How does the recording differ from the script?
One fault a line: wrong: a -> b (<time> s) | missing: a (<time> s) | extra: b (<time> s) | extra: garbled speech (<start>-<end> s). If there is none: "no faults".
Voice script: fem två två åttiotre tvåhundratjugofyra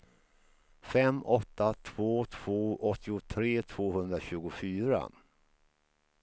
extra: åtta (1.2 s)